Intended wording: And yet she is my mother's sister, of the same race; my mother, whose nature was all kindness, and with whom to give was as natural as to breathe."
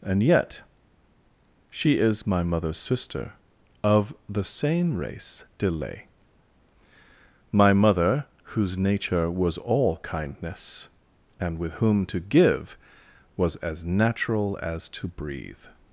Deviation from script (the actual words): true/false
true